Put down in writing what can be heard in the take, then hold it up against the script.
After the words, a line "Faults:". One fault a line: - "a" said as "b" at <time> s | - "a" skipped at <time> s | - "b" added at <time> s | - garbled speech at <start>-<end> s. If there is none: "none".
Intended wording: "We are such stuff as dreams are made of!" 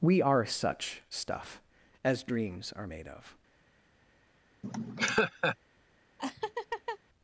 "We are such stuff as dreams are made of!"
Faults:
none